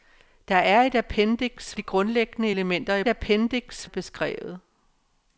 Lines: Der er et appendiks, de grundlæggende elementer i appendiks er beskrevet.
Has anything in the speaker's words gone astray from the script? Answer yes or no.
no